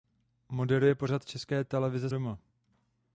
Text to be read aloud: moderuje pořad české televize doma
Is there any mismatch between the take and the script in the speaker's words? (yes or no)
no